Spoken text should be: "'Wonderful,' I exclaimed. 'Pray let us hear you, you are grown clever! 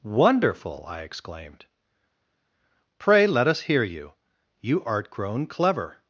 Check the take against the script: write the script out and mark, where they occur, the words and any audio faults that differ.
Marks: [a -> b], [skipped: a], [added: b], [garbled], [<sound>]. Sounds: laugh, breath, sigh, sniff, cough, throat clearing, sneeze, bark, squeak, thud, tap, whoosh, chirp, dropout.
"'Wonderful,' I exclaimed. 'Pray let us hear you, you [are -> art] grown clever!